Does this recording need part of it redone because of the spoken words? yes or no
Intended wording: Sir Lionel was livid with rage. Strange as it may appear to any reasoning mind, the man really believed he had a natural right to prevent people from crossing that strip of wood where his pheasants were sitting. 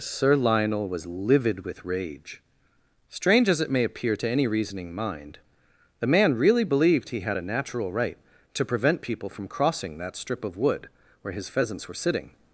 no